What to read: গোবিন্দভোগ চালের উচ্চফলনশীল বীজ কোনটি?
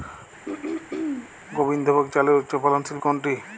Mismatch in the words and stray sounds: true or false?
true